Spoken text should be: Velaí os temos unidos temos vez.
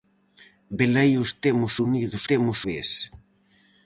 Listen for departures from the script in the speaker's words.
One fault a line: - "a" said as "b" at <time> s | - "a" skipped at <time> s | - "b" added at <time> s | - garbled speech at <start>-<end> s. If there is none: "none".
none